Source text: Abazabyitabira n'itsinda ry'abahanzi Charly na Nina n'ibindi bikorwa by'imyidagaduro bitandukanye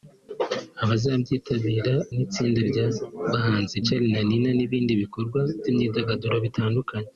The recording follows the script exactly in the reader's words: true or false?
true